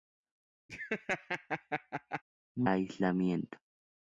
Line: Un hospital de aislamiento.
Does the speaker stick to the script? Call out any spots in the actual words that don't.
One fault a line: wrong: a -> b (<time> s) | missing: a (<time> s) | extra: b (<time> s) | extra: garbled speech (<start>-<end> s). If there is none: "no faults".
missing: hospital de (2.7 s)